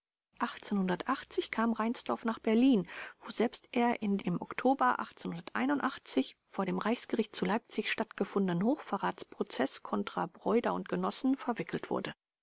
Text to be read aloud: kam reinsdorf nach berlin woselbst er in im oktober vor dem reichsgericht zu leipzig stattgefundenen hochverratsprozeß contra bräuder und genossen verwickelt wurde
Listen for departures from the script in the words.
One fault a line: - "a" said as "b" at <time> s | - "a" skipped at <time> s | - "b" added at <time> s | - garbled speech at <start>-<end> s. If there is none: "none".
none